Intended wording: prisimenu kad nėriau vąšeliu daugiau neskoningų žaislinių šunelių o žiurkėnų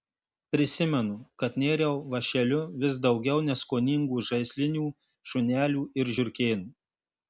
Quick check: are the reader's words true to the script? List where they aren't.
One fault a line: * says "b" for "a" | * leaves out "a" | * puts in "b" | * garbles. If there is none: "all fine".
* puts in "vis"
* says "ir" for "o"